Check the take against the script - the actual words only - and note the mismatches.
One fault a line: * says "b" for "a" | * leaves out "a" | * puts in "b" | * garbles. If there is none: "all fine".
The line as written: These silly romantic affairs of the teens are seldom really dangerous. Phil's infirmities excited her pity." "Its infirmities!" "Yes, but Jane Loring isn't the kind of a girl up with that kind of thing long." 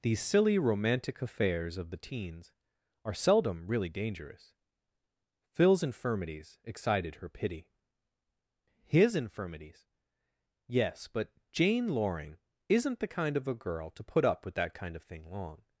* says "His" for "Its"
* puts in "to put"